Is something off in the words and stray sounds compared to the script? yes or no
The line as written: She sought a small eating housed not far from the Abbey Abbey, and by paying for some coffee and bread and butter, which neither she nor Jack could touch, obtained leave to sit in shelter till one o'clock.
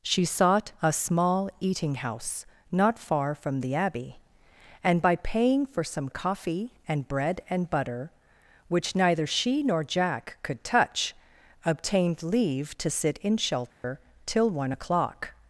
yes